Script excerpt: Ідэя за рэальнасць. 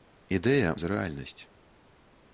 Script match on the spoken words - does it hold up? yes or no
yes